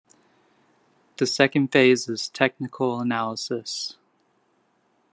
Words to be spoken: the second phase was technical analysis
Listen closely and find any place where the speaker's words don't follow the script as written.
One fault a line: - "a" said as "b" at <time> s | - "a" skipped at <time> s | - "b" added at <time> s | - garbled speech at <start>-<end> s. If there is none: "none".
- "was" said as "is" at 2.1 s